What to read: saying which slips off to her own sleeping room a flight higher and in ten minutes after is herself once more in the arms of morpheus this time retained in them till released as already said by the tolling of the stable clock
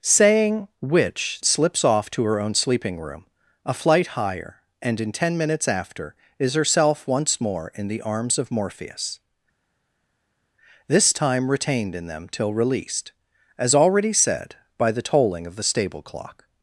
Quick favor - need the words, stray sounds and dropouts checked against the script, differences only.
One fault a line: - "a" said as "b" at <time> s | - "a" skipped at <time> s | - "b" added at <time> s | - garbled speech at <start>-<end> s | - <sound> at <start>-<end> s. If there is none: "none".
none